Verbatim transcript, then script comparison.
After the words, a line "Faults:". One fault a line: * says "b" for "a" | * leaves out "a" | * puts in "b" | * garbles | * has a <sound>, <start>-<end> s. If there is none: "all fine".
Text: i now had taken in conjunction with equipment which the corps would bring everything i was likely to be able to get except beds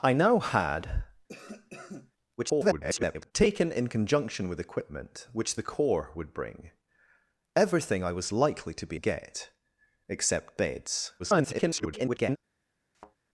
i now had [garbled] taken in conjunction with equipment which the corps would bring everything i was likely to be get except beds [garbled]
Faults:
* has a cough, 1.3-2.1 s
* garbles
* leaves out "able to"
* garbles
* has a thud, 12.9-13.2 s